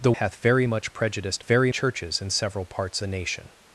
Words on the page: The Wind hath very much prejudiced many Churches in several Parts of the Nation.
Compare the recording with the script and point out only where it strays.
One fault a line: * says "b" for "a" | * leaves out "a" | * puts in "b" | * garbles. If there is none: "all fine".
* leaves out "Wind"
* says "very" for "many"
* leaves out "of"